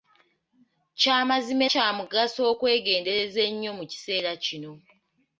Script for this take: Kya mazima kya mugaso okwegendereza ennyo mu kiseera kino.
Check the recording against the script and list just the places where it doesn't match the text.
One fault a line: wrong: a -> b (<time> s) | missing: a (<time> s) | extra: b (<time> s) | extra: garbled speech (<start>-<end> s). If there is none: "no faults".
no faults